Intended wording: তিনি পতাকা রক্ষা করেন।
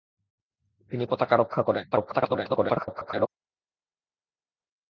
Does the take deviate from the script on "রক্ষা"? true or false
false